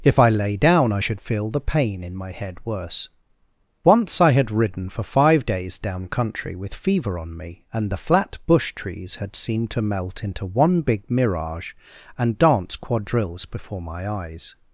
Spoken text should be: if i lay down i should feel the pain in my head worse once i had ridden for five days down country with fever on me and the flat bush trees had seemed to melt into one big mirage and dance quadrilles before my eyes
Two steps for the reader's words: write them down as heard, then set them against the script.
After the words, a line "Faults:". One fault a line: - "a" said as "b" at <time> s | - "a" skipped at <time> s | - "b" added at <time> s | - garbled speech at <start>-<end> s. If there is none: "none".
if i lay down i should feel the pain in my head worse once i had ridden for five days down country with fever on me and the flat bush trees had seemed to melt into one big mirage and dance quadrilles before my eyes
Faults:
none